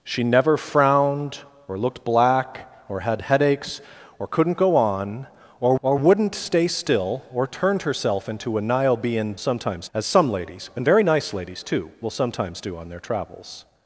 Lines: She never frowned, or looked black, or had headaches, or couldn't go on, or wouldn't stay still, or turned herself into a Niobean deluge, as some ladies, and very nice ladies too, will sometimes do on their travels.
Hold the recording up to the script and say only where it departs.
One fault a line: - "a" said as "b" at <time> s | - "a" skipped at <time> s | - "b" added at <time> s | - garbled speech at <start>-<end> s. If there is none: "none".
- "or" added at 5.8 s
- "deluge" said as "sometimes" at 9.4 s